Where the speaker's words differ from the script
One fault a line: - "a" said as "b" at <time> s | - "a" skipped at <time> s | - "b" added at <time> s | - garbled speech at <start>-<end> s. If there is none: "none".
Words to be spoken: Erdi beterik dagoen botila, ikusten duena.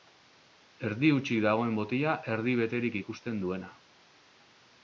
- "beterik" said as "hutsik" at 1.2 s
- "erdi beterik" added at 2.4 s